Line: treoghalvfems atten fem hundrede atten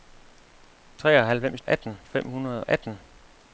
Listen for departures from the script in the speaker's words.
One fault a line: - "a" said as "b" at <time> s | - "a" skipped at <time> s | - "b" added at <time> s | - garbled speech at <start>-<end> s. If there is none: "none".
none